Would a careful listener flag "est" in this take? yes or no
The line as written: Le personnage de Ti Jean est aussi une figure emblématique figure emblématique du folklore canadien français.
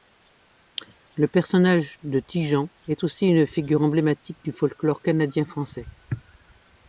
no